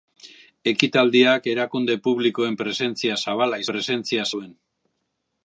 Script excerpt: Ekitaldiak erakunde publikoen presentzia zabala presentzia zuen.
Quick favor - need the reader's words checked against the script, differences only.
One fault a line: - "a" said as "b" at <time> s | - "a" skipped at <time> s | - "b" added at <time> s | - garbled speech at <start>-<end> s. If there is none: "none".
none